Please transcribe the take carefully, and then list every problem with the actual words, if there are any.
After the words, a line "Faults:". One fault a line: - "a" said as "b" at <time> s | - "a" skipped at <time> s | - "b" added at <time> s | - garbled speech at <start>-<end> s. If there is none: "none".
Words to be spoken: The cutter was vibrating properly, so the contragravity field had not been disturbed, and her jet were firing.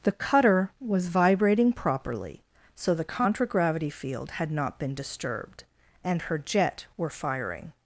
The cutter was vibrating properly, so the contragravity field had not been disturbed, and her jet were firing.
Faults:
none